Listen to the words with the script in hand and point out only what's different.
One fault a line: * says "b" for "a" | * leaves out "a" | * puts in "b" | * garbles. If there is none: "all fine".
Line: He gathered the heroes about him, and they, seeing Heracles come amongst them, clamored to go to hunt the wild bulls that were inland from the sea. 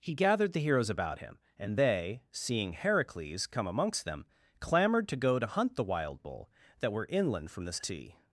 * says "bull" for "bulls"